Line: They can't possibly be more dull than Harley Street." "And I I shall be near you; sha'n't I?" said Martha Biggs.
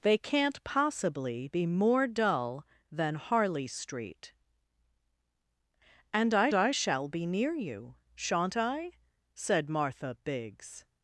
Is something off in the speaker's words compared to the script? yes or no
no